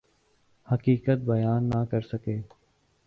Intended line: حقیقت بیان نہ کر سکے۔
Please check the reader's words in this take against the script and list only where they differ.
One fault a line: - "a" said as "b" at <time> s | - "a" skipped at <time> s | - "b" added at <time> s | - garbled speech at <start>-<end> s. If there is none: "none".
none